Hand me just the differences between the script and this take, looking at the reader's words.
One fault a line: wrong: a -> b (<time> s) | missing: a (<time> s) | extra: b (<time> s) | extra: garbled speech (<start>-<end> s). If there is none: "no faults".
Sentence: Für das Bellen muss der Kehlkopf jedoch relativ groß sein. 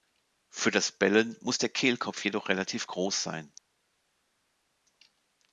no faults